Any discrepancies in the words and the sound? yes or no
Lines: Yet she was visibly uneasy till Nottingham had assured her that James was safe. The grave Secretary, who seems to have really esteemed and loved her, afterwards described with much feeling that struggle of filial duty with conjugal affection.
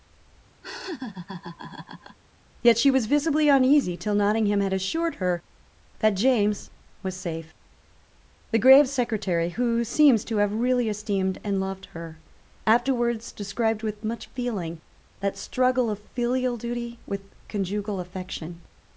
yes